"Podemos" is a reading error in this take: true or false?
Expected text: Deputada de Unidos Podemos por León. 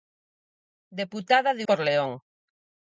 true